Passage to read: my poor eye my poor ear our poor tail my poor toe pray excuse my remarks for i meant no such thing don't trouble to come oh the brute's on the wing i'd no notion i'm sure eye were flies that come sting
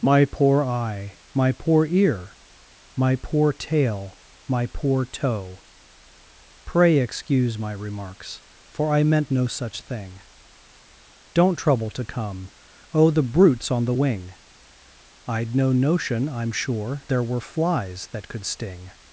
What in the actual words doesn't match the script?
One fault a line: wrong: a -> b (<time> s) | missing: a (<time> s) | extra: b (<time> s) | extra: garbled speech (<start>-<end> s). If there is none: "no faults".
wrong: our -> my (3.0 s)
wrong: eye -> there (17.1 s)
wrong: come -> could (18.3 s)